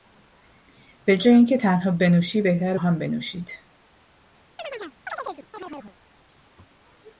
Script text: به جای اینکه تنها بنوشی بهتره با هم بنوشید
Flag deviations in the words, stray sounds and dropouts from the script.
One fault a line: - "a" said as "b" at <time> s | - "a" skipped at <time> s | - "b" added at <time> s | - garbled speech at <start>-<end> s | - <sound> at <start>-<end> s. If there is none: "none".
- "با" skipped at 2.8 s
- chirp at 4.6-6.0 s